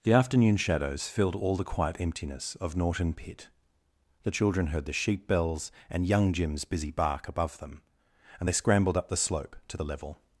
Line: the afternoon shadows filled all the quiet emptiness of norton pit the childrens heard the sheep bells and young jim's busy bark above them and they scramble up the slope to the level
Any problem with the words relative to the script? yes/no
yes